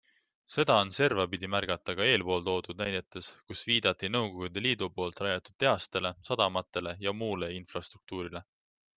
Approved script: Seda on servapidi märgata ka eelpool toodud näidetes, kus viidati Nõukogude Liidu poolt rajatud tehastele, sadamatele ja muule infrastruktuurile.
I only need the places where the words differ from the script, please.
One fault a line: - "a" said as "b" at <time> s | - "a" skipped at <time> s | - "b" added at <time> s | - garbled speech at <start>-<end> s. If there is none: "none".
none